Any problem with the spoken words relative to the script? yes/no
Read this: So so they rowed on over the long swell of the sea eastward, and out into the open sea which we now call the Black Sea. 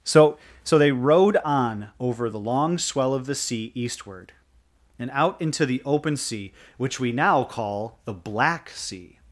no